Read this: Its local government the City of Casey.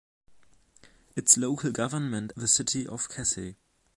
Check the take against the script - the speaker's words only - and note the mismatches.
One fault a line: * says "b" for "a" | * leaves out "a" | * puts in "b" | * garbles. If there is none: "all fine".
all fine